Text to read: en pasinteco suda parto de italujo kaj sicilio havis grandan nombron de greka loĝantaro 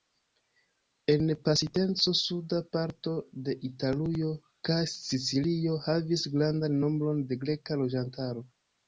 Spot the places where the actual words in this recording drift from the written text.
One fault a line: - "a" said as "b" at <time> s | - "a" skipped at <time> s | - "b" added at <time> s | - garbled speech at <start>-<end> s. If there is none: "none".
none